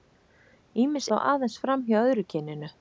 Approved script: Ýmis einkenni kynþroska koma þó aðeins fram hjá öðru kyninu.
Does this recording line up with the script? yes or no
no